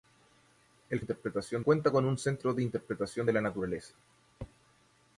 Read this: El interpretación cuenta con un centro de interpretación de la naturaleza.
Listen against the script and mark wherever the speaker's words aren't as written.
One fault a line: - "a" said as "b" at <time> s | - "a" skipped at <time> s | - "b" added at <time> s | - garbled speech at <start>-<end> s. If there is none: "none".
none